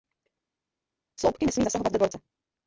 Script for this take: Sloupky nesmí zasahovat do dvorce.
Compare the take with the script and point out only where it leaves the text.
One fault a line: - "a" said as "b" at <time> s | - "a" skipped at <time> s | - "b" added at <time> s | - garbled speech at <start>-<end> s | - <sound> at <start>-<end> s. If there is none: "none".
none